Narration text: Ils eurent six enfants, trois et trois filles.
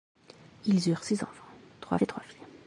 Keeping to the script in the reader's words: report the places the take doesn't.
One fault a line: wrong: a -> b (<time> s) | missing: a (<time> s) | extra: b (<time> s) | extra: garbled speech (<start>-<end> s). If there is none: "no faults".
no faults